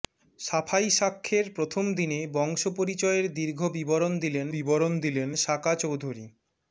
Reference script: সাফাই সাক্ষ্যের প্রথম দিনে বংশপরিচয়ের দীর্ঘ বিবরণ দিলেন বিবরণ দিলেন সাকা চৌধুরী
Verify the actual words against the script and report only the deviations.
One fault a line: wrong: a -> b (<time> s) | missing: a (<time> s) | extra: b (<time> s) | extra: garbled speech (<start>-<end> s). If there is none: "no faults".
no faults